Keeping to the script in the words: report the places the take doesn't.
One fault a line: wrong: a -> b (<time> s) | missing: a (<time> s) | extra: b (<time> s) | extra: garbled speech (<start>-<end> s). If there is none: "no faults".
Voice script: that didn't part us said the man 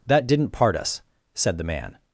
no faults